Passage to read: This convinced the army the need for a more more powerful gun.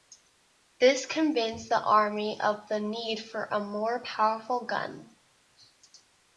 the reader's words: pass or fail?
fail